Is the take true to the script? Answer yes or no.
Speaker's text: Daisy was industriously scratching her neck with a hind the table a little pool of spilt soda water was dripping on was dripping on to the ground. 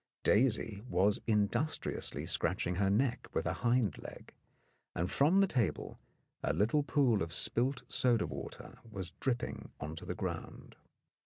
no